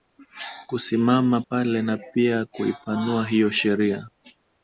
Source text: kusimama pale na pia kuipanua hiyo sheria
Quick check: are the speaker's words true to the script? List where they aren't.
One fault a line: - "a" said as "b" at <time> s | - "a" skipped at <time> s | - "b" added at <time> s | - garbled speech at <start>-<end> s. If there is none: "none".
none